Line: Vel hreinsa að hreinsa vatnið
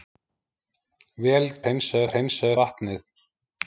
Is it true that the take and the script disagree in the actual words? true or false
false